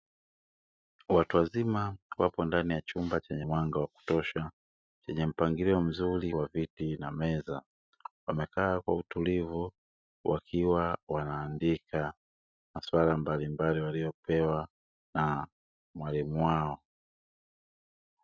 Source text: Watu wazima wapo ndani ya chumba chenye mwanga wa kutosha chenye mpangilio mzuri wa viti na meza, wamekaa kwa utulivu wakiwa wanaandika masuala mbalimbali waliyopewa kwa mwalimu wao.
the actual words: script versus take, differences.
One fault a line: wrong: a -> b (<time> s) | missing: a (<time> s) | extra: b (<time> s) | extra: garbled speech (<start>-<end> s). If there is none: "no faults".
wrong: kwa -> na (15.1 s)